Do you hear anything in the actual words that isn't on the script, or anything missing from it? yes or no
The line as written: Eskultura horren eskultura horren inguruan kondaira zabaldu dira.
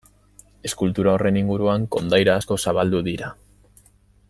yes